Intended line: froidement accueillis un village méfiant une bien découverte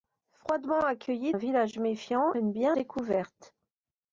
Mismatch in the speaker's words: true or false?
false